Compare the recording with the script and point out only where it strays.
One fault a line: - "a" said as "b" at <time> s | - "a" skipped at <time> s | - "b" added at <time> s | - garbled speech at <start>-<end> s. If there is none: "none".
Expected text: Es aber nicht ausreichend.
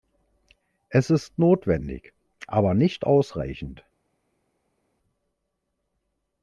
- "ist notwendig" added at 1.1 s